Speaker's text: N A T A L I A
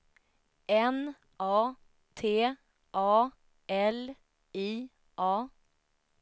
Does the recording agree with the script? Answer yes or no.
yes